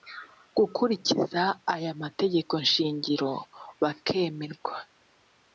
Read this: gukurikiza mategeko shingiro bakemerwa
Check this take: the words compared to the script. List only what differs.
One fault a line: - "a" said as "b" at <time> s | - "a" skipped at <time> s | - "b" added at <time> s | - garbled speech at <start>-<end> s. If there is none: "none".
- "aya" added at 1.7 s